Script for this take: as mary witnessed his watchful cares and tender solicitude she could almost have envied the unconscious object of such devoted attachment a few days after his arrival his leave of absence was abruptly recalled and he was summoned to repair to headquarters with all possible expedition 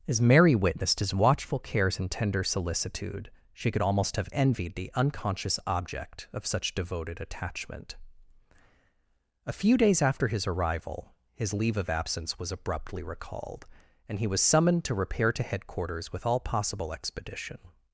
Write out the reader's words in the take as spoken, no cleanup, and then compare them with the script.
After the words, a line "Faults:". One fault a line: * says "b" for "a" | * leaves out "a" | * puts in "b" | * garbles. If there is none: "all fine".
as mary witnessed his watchful cares and tender solicitude she could almost have envied the unconscious object of such devoted attachment a few days after his arrival his leave of absence was abruptly recalled and he was summoned to repair to headquarters with all possible expedition
Faults:
all fine